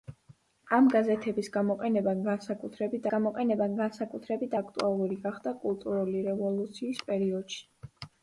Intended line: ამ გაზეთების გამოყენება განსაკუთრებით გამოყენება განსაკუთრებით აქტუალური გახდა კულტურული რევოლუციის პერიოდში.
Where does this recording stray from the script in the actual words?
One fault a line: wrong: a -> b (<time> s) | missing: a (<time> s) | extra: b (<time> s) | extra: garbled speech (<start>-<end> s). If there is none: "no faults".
no faults